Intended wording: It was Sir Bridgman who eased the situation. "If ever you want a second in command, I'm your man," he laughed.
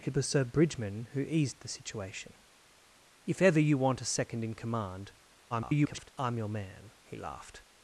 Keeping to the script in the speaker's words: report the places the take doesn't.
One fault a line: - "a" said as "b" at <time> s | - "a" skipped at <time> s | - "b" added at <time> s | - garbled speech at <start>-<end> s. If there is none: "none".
- garbled speech at 5.5-6.1 s